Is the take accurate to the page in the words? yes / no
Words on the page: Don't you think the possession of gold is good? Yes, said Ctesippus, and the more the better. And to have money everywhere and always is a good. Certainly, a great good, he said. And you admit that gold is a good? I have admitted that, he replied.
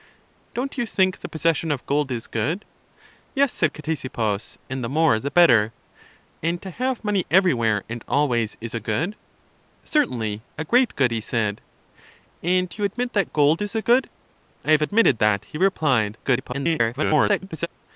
no